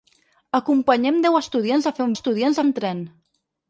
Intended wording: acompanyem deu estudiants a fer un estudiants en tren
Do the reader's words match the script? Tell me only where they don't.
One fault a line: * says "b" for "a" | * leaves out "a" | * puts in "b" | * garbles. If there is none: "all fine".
all fine